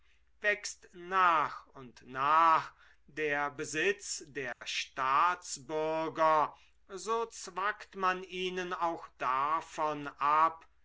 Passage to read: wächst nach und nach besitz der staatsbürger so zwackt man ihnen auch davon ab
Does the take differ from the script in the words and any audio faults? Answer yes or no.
yes